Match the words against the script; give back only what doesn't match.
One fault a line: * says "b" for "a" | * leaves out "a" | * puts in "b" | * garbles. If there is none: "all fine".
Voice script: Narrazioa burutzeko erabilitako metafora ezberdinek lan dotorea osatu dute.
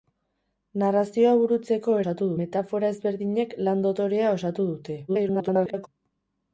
* says "osatu" for "erabilitako"
* garbles